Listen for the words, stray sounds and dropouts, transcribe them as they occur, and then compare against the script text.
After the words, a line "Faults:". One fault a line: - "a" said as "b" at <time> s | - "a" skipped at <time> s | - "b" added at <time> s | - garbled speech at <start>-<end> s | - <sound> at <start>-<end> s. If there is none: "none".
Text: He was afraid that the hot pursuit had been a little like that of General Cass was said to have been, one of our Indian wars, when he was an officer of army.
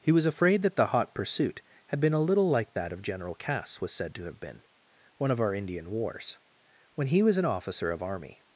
He was afraid that the hot pursuit had been a little like that of General Cass was said to have been, one of our Indian wars, when he was an officer of army.
Faults:
none